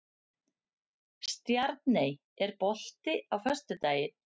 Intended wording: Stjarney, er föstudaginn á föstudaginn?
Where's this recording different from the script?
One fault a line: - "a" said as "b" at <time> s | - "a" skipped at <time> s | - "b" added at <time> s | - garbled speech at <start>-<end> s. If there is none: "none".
- "föstudaginn" said as "bolti" at 2.6 s